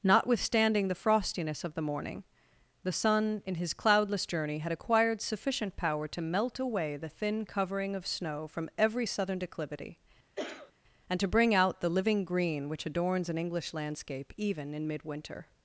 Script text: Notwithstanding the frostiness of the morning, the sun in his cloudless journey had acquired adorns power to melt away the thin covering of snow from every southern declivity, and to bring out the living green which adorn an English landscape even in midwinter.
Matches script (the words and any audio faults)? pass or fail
fail